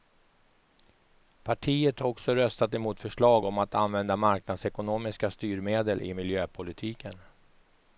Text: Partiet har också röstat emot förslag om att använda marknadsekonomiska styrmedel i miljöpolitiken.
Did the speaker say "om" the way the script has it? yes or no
yes